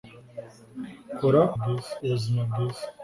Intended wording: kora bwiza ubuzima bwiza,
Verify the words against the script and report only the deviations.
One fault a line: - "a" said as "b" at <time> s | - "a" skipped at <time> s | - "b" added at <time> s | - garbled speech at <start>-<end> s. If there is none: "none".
none